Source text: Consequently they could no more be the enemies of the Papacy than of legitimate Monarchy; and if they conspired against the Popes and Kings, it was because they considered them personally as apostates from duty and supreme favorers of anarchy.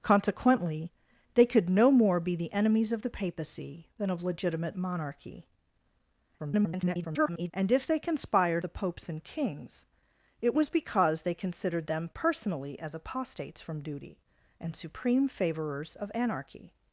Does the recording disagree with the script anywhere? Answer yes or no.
yes